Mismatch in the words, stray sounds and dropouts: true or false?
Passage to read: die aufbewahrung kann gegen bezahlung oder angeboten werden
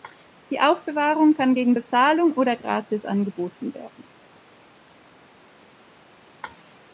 true